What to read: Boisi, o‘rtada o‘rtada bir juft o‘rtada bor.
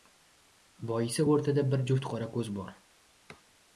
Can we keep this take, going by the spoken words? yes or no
no